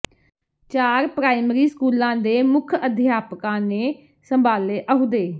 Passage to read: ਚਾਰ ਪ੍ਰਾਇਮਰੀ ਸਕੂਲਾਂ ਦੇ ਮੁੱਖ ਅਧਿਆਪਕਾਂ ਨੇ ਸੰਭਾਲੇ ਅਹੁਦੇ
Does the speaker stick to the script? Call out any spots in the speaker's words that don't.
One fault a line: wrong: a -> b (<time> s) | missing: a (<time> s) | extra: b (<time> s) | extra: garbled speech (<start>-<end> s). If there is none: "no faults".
no faults